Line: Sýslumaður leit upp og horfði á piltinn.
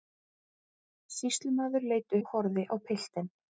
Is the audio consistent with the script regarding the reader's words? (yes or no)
no